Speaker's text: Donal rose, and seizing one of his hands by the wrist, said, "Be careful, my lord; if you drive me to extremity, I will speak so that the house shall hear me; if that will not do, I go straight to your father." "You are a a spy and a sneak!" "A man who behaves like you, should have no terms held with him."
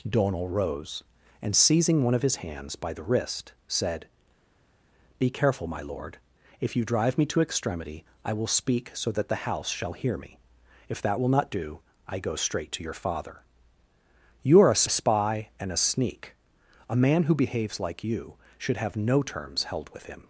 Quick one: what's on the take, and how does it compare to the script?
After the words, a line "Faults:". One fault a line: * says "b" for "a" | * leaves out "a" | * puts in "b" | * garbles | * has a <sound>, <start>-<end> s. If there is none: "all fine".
Donal rose, and seizing one of his hands by the wrist, said, "Be careful, my lord; if you drive me to extremity, I will speak so that the house shall hear me; if that will not do, I go straight to your father." "You are a a spy and a sneak!" "A man who behaves like you, should have no terms held with him."
Faults:
all fine